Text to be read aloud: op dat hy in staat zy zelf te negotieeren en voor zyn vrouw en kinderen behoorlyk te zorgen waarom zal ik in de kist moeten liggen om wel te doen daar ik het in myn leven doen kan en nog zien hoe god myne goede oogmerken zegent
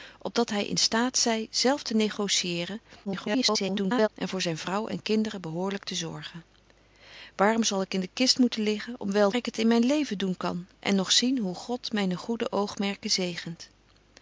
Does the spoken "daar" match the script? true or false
false